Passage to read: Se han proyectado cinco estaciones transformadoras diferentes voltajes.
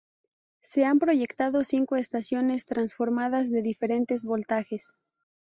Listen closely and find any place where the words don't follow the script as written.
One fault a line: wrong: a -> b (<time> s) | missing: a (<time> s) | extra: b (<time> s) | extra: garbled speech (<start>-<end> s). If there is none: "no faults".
extra: de (3.5 s)